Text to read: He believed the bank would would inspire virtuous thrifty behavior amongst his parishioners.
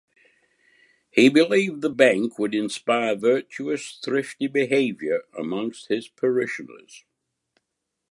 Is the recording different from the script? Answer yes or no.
yes